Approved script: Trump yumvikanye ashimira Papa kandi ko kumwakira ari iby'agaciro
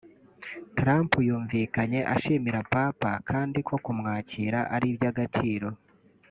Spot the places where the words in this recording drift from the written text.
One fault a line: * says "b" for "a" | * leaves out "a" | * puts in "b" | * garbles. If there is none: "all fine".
all fine